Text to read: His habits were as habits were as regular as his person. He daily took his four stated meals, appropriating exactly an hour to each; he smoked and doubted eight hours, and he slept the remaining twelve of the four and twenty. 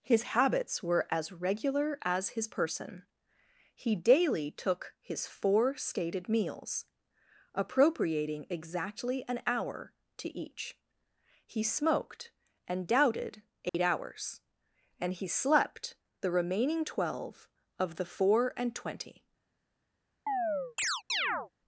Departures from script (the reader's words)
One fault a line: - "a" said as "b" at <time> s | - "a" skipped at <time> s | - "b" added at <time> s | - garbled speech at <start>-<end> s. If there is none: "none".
- "habits were as" skipped at 1.3 s